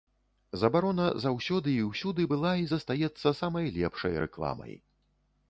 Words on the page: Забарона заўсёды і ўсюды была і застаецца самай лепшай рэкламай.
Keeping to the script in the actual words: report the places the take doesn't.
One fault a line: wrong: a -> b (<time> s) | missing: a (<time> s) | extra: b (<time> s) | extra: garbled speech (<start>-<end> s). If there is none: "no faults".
no faults